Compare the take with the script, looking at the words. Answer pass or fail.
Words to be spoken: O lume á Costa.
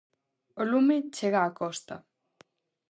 fail